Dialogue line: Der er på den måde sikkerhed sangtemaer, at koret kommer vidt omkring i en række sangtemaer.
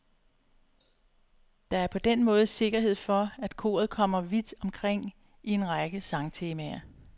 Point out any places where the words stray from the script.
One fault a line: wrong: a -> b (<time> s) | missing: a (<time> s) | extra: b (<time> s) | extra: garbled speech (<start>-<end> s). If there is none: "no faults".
wrong: sangtemaer -> for (3.0 s)